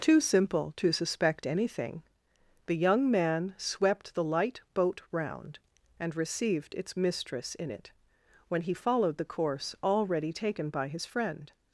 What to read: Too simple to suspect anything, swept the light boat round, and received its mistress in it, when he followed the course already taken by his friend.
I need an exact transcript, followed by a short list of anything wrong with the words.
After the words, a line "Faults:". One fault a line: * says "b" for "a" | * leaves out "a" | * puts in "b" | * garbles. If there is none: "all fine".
Too simple to suspect anything, the young man swept the light boat round, and received its mistress in it, when he followed the course already taken by his friend.
Faults:
* puts in "the young man"